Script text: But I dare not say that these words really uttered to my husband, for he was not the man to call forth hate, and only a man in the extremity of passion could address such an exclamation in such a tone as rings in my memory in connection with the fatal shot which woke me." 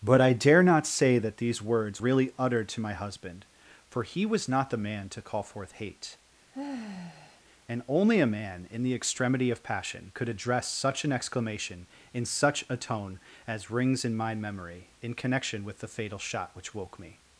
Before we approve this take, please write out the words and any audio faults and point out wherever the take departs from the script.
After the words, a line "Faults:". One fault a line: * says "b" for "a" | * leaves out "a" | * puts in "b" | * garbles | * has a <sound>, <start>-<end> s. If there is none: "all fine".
But I dare not say that these words really uttered to my husband, for he was not the man to call forth hate, and only a man in the extremity of passion could address such an exclamation in such a tone as rings in my memory in connection with the fatal shot which woke me."
Faults:
* has a sigh, 6.5-7.4 s